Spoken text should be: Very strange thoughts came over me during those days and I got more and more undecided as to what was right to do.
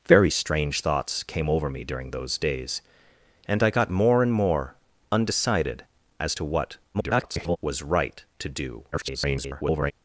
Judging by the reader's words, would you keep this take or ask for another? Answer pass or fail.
fail